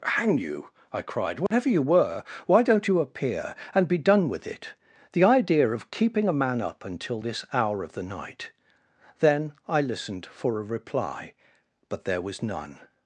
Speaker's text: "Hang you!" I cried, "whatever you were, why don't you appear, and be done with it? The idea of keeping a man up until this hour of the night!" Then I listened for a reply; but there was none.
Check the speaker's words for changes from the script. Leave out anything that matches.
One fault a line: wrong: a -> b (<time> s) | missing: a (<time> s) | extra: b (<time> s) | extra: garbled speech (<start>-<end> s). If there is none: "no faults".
no faults